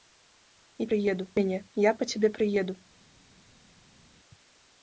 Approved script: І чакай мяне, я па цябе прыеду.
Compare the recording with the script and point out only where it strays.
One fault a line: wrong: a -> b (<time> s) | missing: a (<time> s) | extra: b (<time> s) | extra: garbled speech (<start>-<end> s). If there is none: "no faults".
wrong: чакай -> прыеду (0.9 s)